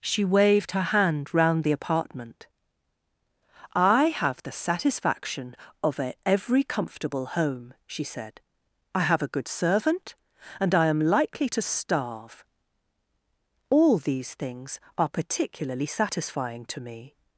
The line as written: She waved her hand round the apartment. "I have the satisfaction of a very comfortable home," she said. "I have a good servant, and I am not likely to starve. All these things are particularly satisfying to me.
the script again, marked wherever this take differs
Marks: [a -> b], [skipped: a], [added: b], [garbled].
She waved her hand round the apartment. "I have the satisfaction of a [very -> every] comfortable home," she said. "I have a good servant, and I am [skipped: not] likely to starve. All these things are particularly satisfying to me.